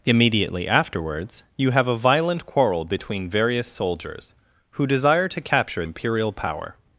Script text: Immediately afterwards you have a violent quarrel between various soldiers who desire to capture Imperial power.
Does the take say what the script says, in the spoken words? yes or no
yes